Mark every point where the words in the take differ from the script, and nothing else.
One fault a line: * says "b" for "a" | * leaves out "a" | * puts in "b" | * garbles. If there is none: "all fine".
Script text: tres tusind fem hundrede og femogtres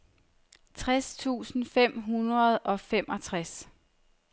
all fine